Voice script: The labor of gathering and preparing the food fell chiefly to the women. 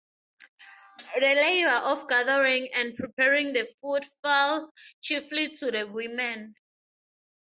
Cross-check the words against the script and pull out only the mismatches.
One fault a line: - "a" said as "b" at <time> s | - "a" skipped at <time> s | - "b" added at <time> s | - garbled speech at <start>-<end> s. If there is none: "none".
none